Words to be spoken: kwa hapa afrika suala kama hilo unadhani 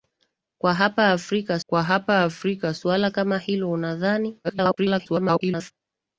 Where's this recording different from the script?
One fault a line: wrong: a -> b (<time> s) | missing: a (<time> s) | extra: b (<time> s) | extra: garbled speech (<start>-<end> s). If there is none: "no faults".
extra: kwa hapa afrika (1.7 s)
extra: garbled speech (4.4-5.7 s)